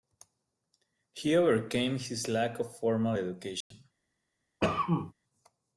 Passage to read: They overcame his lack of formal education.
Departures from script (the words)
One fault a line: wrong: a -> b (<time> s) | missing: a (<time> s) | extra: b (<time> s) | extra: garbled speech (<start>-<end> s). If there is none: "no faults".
wrong: They -> He (1.1 s)